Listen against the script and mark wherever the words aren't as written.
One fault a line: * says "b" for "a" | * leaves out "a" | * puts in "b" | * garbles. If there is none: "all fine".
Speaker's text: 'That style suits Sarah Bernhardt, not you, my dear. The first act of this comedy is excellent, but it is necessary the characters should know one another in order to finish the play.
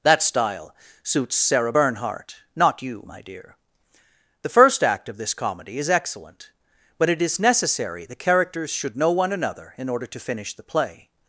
all fine